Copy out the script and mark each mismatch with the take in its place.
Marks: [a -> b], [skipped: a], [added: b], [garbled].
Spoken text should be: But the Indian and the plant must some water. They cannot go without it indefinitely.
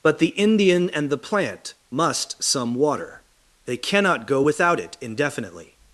But the Indian and the plant must some water. They cannot go without it indefinitely.